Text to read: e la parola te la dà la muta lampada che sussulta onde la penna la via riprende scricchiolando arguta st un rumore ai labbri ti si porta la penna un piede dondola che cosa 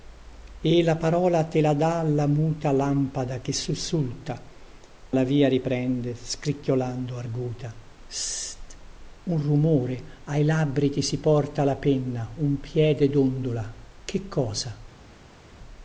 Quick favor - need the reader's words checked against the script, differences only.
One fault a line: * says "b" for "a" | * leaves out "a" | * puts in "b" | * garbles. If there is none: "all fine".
* leaves out "onde la penna"